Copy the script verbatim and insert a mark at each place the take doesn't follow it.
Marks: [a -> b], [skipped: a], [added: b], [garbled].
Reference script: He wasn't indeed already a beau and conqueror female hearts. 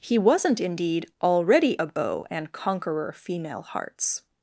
He wasn't indeed already a beau and conqueror female hearts.